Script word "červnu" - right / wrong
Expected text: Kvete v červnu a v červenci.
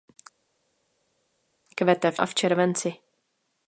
wrong